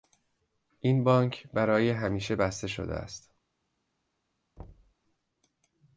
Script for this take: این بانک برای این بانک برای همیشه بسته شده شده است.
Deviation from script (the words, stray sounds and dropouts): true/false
true